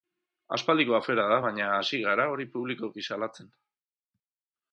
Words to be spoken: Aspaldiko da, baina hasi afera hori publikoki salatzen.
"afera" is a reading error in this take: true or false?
true